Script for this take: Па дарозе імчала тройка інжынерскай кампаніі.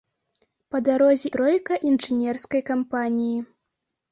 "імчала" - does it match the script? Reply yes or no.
no